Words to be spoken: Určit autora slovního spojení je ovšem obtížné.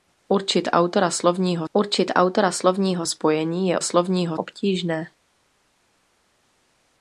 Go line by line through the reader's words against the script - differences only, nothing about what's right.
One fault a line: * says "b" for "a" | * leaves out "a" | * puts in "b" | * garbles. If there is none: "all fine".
* puts in "určit autora slovního"
* says "slovního" for "ovšem"